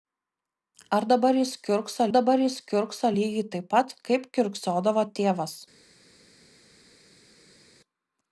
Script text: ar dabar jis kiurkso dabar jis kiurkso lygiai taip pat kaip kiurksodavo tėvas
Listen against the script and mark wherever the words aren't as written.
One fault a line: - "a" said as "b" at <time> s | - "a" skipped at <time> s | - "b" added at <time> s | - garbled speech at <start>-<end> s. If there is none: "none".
none